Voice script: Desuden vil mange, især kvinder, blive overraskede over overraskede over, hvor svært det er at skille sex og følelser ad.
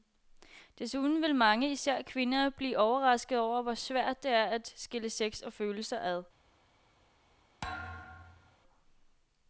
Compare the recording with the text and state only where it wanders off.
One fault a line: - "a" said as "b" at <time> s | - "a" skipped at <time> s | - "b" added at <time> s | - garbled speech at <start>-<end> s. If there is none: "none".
- "overraskede over" skipped at 3.6 s